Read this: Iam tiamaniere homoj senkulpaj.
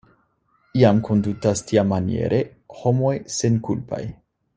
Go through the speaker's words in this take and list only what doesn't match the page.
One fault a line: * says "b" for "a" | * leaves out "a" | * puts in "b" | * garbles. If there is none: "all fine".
* puts in "kondutas"